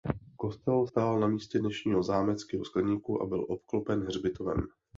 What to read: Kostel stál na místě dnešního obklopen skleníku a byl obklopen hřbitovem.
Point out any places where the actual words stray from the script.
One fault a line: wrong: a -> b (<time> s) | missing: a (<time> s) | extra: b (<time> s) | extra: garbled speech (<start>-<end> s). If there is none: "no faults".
wrong: obklopen -> zámeckého (2.0 s)